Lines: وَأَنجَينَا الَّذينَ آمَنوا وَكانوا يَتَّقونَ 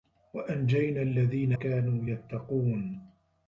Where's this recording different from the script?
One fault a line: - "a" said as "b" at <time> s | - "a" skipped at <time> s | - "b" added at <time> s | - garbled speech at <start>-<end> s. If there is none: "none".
- "آمَنوا" skipped at 1.5 s